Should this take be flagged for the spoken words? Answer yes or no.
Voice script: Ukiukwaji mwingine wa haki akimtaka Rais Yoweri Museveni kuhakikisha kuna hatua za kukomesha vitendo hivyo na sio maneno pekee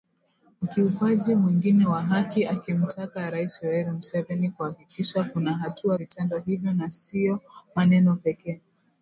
yes